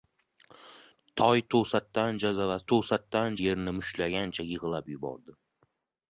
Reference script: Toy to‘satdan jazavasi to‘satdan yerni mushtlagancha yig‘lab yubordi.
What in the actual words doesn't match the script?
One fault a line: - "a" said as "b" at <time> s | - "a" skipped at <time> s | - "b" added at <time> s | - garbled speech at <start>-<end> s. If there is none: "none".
none